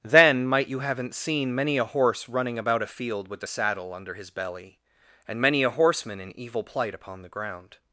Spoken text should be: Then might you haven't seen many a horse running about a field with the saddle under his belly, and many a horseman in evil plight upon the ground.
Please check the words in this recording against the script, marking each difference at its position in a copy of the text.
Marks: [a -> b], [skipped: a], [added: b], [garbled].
Then might you haven't seen many a horse running about a field with the saddle under his belly, and many a horseman in evil plight upon the ground.